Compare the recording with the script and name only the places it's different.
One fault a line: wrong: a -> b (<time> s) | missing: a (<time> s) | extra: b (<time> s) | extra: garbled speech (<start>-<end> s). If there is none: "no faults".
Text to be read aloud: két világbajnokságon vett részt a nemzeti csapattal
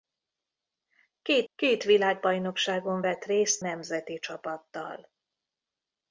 extra: két (1.5 s)
missing: a (3.6 s)